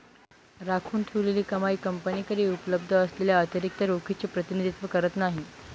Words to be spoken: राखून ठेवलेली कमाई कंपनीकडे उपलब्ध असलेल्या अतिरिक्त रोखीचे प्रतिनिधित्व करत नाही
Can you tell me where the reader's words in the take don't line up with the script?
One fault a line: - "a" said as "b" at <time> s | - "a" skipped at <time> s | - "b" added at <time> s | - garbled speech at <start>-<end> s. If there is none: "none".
none